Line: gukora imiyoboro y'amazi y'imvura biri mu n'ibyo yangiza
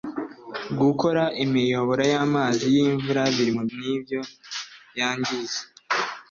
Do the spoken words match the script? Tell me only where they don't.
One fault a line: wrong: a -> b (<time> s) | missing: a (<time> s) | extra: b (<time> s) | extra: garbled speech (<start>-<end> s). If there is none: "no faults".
no faults